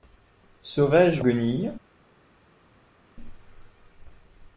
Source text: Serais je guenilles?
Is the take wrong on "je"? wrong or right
right